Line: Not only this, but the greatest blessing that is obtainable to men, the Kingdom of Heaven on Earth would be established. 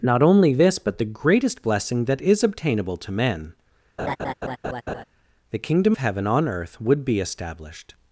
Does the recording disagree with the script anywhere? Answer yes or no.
yes